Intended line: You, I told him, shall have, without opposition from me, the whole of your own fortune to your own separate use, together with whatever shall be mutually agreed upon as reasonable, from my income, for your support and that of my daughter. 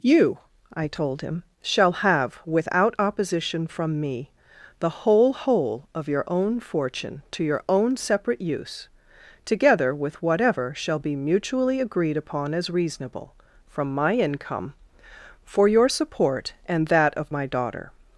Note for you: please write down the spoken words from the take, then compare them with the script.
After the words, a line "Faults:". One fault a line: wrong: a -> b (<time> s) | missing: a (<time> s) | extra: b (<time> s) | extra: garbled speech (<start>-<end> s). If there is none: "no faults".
You, I told him, shall have, without opposition from me, the whole whole of your own fortune to your own separate use, together with whatever shall be mutually agreed upon as reasonable, from my income, for your support and that of my daughter.
Faults:
extra: whole (5.3 s)